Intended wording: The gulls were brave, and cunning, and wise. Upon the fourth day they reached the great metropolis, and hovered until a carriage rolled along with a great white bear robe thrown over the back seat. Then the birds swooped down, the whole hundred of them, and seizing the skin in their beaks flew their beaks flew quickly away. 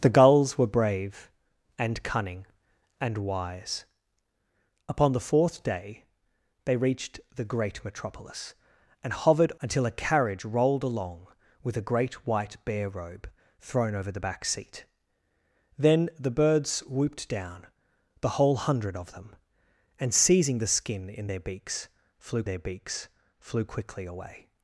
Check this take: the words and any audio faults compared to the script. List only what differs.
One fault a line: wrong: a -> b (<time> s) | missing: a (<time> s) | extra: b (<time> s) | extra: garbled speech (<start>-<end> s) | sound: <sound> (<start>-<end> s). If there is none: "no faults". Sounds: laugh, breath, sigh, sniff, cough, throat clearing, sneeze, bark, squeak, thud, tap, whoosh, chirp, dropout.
no faults